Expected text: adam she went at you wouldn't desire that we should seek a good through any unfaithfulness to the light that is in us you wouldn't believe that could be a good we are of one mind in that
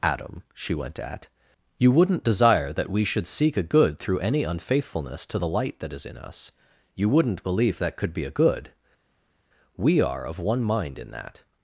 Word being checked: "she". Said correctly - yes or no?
yes